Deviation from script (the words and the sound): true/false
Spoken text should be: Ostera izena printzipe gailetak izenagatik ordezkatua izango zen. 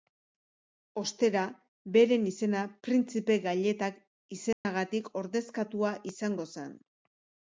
true